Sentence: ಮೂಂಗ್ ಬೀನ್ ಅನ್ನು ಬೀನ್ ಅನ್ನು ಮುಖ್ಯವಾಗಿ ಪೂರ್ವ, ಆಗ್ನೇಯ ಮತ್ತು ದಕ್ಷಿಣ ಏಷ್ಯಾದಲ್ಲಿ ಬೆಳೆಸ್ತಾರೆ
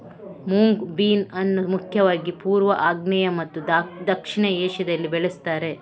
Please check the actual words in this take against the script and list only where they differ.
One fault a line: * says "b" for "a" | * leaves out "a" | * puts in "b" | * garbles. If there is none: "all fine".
* leaves out "ಬೀನ್ ಅನ್ನು"